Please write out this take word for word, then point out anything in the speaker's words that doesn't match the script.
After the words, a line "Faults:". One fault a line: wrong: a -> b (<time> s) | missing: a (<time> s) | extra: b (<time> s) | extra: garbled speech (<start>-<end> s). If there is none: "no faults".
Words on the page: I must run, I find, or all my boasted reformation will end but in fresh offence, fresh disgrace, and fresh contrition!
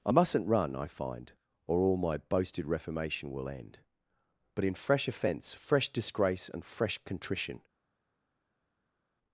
I mustn't run, I find, or all my boasted reformation will end but in fresh offence, fresh disgrace, and fresh contrition!
Faults:
wrong: must -> mustn't (0.1 s)